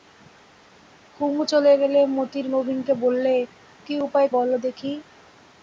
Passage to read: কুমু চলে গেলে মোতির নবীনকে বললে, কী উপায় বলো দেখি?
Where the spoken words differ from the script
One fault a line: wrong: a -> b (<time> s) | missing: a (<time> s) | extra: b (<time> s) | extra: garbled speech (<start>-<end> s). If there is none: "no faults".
no faults